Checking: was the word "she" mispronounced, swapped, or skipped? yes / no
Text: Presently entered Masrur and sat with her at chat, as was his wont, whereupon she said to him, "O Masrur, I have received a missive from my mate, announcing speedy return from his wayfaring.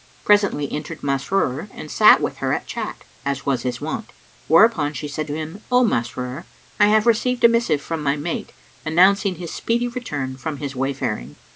no